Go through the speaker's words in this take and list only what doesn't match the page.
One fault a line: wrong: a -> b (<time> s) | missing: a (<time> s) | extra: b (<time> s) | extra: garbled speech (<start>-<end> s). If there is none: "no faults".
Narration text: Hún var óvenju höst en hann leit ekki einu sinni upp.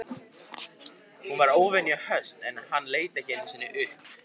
no faults